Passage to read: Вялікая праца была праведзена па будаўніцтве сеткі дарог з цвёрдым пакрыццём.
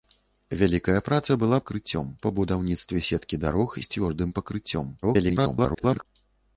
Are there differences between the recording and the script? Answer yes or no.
yes